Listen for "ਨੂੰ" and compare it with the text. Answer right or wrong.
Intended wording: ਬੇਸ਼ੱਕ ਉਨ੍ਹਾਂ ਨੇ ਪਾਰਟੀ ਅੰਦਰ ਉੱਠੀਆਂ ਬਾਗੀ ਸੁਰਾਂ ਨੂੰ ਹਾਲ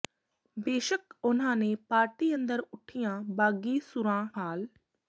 wrong